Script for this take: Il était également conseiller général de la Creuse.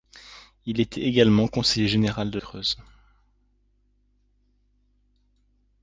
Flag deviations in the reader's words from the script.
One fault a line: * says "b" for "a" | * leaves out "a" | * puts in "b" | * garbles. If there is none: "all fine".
* leaves out "la"